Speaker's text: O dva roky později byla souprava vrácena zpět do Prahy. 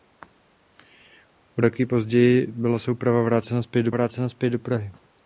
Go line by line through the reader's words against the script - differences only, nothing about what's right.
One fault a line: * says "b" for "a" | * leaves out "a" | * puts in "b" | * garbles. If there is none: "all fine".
* leaves out "dva"
* puts in "vrácena zpět do"